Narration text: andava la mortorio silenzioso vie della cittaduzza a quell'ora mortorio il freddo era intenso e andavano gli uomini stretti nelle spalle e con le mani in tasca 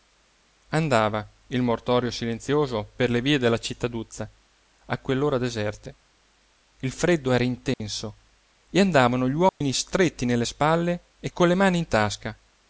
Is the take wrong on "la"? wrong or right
wrong